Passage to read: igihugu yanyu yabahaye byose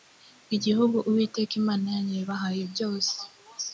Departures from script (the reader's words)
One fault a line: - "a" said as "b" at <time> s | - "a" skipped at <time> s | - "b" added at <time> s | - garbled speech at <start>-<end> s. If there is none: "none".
- "uwiteka imana" added at 1.1 s